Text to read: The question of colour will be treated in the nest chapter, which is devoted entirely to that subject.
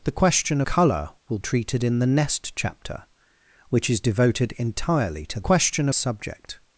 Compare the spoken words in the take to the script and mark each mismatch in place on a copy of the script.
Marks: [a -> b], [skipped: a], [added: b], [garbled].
The question [skipped: of] colour will [skipped: be] treated in the nest chapter, which is devoted entirely to [that -> question] subject.